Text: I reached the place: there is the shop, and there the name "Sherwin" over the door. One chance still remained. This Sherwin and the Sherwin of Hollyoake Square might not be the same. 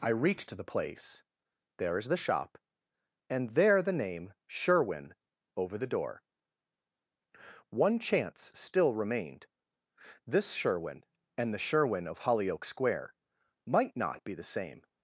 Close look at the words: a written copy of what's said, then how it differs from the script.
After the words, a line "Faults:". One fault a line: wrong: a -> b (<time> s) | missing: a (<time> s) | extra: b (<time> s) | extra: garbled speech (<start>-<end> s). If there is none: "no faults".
I reached the place: there is the shop, and there the name "Sherwin" over the door. One chance still remained. This Sherwin and the Sherwin of Hollyoake Square might not be the same.
Faults:
no faults